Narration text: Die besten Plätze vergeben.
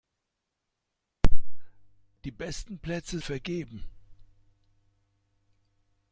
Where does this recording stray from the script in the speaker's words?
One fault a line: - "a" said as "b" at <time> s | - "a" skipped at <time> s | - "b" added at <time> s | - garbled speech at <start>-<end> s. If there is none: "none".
none